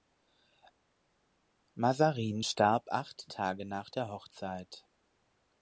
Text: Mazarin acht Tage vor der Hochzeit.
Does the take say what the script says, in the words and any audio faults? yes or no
no